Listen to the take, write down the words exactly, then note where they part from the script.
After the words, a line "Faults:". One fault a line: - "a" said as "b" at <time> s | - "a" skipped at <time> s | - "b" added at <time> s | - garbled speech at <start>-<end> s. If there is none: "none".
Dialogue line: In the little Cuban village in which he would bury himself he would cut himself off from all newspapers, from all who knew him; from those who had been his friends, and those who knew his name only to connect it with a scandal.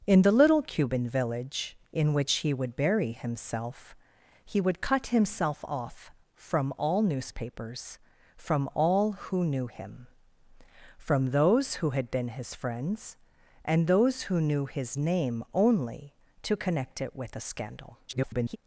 In the little Cuban village in which he would bury himself he would cut himself off from all newspapers, from all who knew him; from those who had been his friends, and those who knew his name only to connect it with a scandal. [garbled]
Faults:
- garbled speech at 18.1-18.6 s